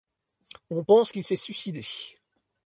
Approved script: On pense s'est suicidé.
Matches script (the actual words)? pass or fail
fail